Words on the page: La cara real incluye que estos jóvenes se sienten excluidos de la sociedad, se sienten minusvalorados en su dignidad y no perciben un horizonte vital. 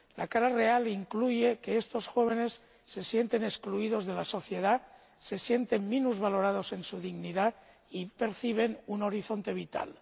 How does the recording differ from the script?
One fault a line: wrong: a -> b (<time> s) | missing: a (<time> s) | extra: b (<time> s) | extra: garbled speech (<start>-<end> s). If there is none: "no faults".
missing: no (8.1 s)